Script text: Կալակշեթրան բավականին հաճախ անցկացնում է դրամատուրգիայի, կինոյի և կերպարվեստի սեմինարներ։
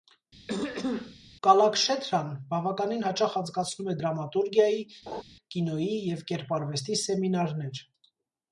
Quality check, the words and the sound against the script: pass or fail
fail